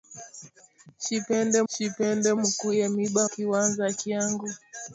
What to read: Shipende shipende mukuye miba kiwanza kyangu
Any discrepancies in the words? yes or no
no